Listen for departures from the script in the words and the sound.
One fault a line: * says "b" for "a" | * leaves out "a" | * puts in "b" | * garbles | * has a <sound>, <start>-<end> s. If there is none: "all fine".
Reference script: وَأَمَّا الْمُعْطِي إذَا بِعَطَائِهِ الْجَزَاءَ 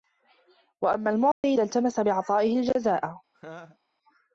* has a dropout, 1.3-1.4 s
* puts in "الْتَمَسَ"
* has a laugh, 3.3-3.8 s